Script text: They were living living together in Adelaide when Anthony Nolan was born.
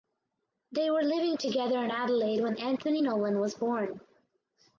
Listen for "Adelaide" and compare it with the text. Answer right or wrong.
right